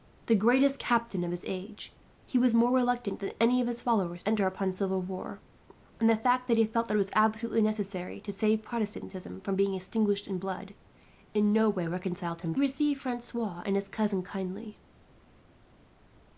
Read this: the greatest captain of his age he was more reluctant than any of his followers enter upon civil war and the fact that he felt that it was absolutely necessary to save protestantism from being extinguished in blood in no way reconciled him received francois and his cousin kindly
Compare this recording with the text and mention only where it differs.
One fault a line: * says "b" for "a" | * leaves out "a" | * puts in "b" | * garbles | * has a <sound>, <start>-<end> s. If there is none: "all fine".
all fine